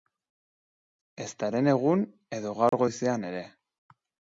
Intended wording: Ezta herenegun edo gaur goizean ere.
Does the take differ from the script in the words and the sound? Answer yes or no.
yes